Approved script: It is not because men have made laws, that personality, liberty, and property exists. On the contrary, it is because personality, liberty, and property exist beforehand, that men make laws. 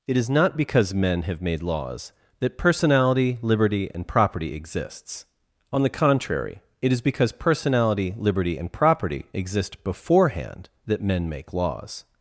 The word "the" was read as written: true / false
true